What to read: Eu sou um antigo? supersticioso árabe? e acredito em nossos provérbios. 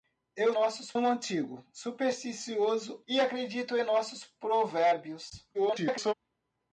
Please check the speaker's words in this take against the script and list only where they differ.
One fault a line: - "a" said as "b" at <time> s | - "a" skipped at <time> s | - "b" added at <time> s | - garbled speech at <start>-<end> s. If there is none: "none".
- "sou" said as "nossos" at 0.5 s
- "árabe" skipped at 3.0 s
- garbled speech at 5.5-6.1 s